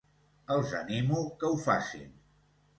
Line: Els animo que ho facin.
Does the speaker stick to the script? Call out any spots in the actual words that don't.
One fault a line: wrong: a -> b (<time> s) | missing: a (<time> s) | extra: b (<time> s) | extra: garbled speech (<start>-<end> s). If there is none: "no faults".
no faults